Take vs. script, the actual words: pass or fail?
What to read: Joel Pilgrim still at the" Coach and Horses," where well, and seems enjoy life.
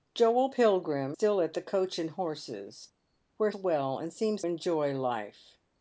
pass